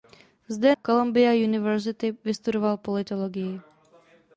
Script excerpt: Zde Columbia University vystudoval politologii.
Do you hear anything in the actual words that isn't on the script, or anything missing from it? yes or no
no